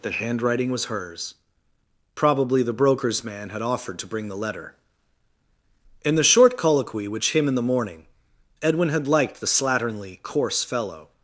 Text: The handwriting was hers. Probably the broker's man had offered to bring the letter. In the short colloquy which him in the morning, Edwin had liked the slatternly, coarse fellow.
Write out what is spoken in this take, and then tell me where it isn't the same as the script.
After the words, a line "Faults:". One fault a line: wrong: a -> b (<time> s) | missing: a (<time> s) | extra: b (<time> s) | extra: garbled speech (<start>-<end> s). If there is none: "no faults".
The handwriting was hers. Probably the broker's man had offered to bring the letter. In the short colloquy which him in the morning, Edwin had liked the slatternly, coarse fellow.
Faults:
no faults